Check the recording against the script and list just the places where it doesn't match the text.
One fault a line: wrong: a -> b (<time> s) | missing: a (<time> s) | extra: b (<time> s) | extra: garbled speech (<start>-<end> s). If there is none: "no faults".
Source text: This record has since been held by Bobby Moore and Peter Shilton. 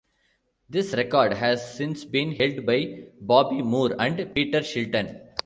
no faults